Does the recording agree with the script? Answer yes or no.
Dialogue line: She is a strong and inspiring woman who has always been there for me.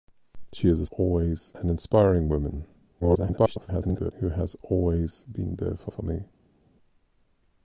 no